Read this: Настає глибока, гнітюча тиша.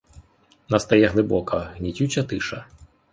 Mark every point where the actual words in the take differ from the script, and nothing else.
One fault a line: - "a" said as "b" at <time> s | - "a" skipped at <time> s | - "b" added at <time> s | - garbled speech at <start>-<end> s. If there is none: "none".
none